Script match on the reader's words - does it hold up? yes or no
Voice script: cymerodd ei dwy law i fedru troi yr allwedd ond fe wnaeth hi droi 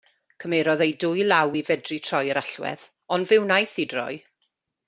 yes